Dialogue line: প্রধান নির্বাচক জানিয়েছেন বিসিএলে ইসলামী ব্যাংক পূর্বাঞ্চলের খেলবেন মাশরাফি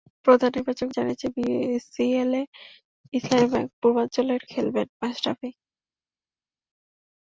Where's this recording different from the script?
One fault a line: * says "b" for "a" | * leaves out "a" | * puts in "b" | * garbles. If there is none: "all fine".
all fine